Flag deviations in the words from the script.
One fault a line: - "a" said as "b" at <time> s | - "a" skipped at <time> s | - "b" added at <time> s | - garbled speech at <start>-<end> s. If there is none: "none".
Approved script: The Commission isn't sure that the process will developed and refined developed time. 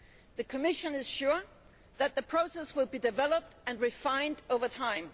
- "isn't" said as "is" at 0.9 s
- "be" added at 2.9 s
- "developed" said as "over" at 4.5 s